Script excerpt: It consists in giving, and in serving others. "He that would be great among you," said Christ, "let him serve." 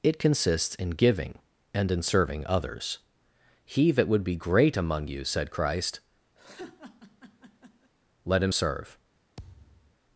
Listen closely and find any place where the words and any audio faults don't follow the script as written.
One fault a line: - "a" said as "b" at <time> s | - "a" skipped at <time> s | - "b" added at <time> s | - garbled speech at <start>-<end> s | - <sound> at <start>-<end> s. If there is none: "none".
- laugh at 6.4-7.9 s
- thud at 9.4-9.9 s